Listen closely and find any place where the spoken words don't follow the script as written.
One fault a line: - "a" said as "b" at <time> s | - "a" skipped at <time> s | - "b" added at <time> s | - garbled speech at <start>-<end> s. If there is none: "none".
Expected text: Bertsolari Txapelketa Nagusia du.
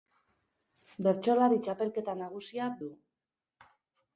none